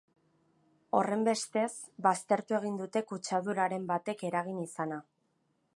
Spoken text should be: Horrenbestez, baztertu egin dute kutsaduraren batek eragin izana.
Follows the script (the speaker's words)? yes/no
yes